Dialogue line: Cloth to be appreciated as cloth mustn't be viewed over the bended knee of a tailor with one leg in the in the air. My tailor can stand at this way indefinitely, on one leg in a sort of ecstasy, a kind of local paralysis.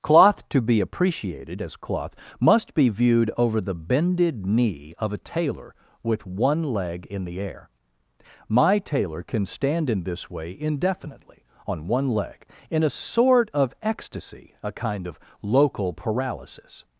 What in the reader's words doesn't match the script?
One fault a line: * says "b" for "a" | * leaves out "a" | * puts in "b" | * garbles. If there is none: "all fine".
* says "must" for "mustn't"
* leaves out "in the"
* says "in" for "at"